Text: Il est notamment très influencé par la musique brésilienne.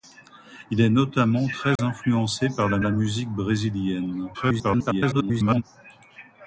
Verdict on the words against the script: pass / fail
fail